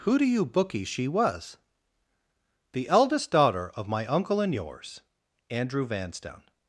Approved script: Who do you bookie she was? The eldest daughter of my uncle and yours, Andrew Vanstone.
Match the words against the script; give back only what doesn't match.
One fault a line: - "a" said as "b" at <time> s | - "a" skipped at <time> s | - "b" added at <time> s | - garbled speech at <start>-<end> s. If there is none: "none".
none